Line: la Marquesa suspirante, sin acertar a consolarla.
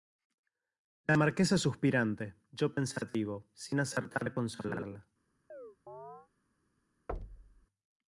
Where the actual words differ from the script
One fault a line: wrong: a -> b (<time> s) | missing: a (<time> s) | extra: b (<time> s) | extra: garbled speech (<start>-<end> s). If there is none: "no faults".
extra: yo pensativo (2.5 s)